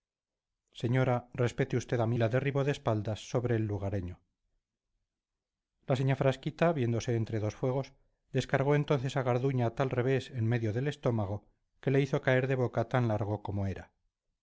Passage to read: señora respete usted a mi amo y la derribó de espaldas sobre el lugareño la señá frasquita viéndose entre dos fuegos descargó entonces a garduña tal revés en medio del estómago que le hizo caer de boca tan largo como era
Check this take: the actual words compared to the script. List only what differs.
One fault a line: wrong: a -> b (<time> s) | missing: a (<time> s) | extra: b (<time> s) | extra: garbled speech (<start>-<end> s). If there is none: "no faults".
missing: amo y (2.2 s)